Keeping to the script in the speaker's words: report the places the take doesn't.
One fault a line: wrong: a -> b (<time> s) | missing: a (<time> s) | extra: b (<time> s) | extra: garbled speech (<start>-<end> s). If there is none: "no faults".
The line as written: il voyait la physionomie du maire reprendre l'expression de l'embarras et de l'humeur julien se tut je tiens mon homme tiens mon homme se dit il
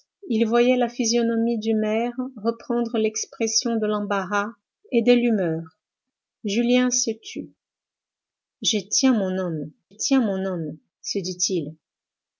no faults